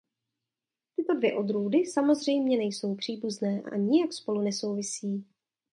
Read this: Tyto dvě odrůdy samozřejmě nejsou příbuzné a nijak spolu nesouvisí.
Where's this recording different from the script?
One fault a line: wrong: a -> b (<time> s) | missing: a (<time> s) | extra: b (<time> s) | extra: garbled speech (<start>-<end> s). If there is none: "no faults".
extra: a (3.7 s)